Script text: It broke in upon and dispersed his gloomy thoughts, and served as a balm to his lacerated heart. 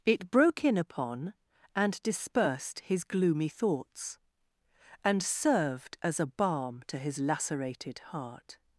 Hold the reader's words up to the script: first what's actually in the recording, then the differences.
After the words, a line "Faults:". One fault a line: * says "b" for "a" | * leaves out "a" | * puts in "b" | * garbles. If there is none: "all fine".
It broke in upon and dispersed his gloomy thoughts, and served as a balm to his lacerated heart.
Faults:
all fine